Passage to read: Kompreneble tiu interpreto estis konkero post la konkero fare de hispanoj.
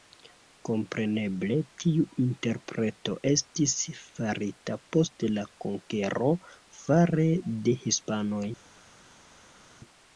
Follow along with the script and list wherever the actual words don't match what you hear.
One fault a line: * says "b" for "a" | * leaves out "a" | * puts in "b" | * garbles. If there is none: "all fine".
* says "farita" for "konkero"